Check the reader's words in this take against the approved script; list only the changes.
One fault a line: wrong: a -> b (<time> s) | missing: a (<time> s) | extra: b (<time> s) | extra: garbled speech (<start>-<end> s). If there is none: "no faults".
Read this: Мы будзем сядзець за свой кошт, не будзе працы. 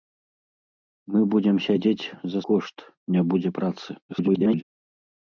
missing: свой (2.4 s)
extra: garbled speech (4.1-4.6 s)